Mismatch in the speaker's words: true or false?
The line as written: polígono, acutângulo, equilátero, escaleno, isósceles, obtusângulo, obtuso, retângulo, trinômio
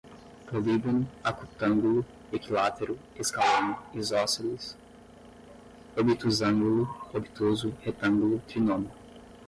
false